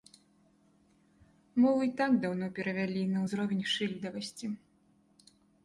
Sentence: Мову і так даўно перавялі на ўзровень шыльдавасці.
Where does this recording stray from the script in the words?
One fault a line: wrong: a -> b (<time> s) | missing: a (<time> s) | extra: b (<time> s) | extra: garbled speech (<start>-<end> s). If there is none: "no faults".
no faults